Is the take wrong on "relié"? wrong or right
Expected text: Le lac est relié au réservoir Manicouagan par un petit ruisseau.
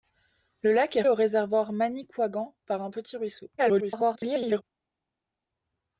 wrong